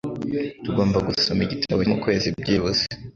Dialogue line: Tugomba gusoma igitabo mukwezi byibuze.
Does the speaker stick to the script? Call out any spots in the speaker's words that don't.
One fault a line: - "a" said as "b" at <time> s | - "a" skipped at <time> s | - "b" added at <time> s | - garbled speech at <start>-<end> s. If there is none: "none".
none